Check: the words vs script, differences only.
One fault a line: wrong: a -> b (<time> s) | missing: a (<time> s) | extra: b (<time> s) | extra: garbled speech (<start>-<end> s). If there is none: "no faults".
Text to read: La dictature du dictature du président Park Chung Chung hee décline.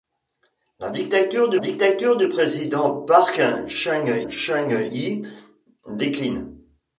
no faults